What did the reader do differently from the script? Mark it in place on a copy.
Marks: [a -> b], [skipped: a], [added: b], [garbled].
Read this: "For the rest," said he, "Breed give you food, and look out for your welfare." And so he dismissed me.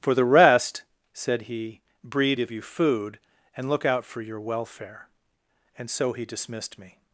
"For the rest," said he, "Breed give you food, and look out for your welfare." And so he dismissed me.